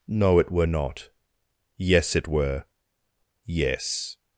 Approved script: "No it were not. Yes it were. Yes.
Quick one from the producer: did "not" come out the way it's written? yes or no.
yes